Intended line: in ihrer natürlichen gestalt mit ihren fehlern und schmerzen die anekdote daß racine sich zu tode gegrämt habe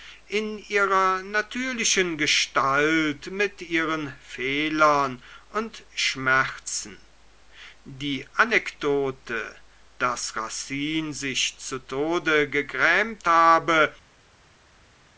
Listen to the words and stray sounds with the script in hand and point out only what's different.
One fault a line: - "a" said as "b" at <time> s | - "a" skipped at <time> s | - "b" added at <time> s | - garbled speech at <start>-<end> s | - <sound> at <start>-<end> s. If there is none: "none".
none